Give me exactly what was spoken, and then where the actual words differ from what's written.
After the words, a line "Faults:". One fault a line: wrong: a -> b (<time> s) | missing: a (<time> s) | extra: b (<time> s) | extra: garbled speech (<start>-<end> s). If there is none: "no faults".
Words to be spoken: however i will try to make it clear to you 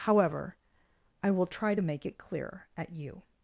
however i will try to make it clear at you
Faults:
wrong: to -> at (2.8 s)